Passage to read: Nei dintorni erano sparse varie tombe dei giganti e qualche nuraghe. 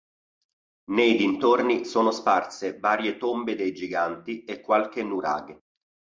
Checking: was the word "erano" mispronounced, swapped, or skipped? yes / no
yes